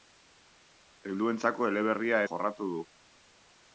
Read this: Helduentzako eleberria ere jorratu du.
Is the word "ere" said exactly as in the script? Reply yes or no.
no